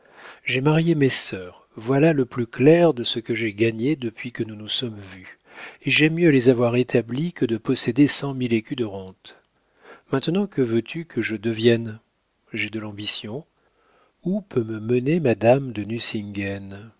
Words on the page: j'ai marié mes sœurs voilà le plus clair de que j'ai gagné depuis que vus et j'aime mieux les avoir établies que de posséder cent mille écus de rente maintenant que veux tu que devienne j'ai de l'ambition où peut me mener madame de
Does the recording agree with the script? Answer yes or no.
no